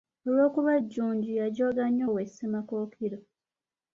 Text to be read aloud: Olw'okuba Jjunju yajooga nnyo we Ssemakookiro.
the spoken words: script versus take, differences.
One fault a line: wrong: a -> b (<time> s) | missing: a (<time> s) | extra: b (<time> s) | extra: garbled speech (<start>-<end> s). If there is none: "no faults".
no faults